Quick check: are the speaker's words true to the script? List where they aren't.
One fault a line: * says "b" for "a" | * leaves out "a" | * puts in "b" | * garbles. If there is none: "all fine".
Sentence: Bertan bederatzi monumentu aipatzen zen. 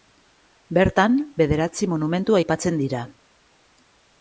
* says "dira" for "zen"